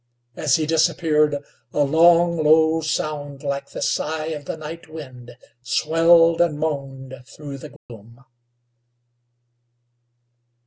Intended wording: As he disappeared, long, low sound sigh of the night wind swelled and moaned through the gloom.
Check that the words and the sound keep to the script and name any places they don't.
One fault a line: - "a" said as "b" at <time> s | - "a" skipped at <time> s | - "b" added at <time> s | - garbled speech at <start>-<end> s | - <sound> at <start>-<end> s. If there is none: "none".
- "a" added at 1.7 s
- "like the" added at 3.4 s
- dropout at 7.8-7.9 s